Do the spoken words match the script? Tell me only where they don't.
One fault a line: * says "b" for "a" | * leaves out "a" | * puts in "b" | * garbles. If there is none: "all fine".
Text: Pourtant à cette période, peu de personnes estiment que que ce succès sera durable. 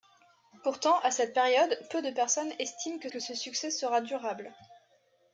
all fine